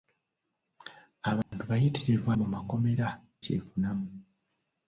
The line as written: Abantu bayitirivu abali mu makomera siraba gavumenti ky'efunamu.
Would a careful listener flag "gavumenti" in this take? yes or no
yes